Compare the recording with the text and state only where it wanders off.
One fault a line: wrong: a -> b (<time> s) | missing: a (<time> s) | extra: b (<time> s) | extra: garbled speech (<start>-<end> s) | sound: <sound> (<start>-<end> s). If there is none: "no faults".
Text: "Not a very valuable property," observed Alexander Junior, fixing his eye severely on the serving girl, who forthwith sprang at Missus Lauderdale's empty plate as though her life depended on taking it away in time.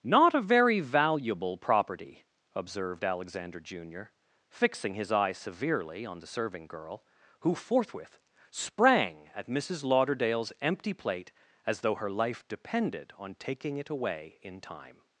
no faults